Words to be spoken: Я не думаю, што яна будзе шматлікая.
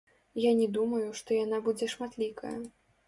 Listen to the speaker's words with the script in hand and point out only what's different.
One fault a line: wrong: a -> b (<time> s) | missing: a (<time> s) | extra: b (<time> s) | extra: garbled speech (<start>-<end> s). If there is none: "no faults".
no faults